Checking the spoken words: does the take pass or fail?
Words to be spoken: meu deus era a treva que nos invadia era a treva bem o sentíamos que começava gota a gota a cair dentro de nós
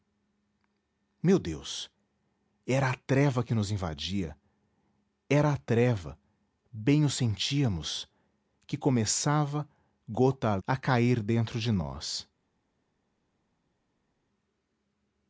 fail